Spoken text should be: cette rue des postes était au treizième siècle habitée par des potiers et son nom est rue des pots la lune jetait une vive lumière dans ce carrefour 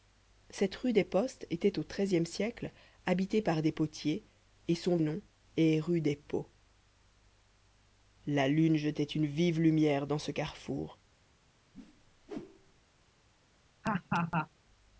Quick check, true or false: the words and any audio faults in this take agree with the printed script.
false